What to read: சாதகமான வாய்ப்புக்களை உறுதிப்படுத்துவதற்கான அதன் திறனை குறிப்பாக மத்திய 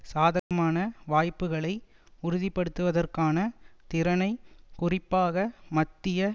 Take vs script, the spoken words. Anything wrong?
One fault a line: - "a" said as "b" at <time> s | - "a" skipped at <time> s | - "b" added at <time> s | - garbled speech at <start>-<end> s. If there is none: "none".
- "அதன்" skipped at 3.4 s